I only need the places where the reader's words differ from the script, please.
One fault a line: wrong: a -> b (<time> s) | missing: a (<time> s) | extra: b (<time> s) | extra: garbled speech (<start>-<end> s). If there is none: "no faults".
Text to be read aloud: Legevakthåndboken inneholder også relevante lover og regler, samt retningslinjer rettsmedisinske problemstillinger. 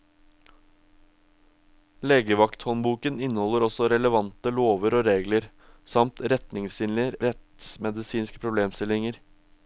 no faults